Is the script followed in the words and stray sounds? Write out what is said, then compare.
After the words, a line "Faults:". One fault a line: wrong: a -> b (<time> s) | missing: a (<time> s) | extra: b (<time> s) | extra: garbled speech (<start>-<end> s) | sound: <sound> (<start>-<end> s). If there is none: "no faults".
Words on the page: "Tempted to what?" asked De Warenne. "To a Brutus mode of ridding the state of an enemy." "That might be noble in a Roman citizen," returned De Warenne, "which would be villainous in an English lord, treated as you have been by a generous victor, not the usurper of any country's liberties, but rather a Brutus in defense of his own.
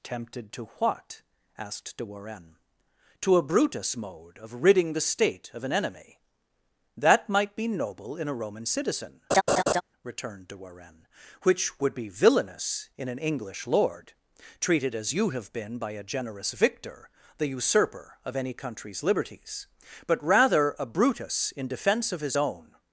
"Tempted to what?" asked De Warenne. "To a Brutus mode of ridding the state of an enemy." "That might be noble in a Roman citizen," returned De Warenne, "which would be villainous in an English lord, treated as you have been by a generous victor, the usurper of any country's liberties, but rather a Brutus in defense of his own.
Faults:
sound: laugh (9.3-9.8 s)
missing: not (17.1 s)